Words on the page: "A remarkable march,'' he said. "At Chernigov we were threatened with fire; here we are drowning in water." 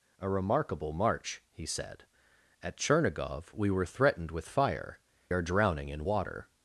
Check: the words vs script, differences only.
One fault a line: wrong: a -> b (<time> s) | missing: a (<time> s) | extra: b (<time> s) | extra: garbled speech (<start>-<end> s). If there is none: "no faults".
missing: here we (5.0 s)